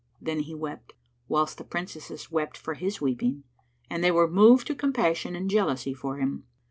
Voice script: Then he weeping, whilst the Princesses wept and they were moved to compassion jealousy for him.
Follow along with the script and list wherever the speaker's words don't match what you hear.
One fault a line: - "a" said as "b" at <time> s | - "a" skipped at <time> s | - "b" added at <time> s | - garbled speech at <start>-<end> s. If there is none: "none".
- "weeping" said as "wept" at 0.6 s
- "for his weeping" added at 2.6 s
- "and" added at 5.3 s